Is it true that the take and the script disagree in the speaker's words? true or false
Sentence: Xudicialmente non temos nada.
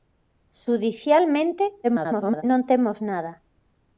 true